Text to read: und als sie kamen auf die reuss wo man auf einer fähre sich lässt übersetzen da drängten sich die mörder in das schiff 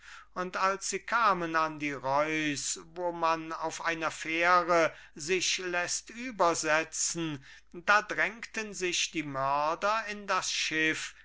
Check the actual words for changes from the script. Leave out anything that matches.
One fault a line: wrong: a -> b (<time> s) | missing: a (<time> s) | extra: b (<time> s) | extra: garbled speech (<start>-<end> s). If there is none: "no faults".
wrong: auf -> an (1.6 s)